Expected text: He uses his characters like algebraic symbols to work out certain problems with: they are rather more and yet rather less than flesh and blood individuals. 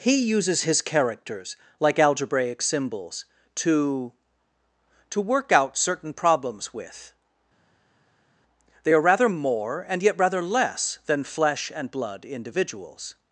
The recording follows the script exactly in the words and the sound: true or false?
false